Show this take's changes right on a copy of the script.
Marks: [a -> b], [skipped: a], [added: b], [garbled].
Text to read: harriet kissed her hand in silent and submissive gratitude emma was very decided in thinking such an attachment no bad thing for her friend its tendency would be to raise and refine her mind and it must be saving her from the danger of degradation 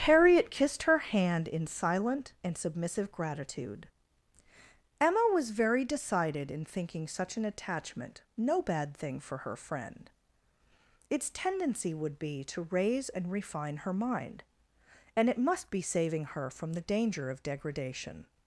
harriet kissed her hand in silent and submissive gratitude emma was very decided in thinking such an attachment no bad thing for her friend its tendency would be to raise and refine her mind and it must be saving her from the danger of degradation